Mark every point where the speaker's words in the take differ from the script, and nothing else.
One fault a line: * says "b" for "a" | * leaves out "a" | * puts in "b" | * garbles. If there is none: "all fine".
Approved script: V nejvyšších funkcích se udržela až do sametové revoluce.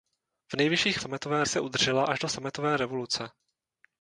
* says "sametové" for "funkcích"